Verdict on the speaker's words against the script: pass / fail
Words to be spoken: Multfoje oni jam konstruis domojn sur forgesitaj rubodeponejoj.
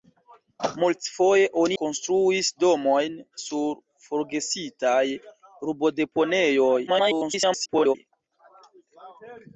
fail